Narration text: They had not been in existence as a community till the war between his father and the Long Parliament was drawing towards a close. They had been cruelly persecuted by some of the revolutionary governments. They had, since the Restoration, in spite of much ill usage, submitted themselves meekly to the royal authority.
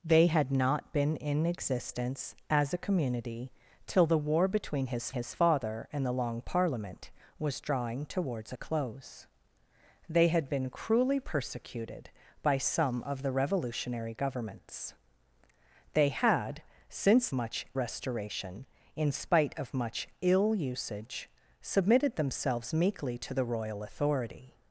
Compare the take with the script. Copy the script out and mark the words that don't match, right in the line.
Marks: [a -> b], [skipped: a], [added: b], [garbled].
They had not been in existence as a community till the war between his [added: his] father and the Long Parliament was drawing towards a close. They had been cruelly persecuted by some of the revolutionary governments. They had, since [the -> much] Restoration, in spite of much ill usage, submitted themselves meekly to the royal authority.